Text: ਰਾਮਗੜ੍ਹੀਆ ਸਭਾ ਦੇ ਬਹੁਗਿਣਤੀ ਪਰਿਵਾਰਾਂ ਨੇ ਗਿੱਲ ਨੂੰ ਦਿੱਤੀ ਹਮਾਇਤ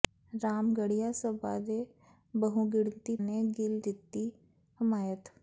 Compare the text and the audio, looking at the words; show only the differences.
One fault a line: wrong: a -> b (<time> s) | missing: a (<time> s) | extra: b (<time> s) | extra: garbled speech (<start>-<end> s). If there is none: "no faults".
missing: ਪਰਿਵਾਰਾਂ (3.2 s)
missing: ਨੂੰ (3.8 s)